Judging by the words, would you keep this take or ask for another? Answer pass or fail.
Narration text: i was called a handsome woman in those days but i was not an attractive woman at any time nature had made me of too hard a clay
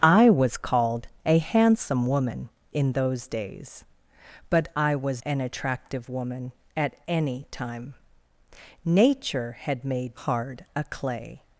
fail